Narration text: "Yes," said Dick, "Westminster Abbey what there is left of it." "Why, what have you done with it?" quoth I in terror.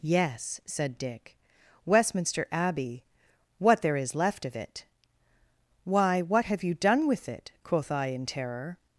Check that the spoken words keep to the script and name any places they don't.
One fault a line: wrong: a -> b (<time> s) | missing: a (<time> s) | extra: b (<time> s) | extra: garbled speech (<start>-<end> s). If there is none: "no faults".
no faults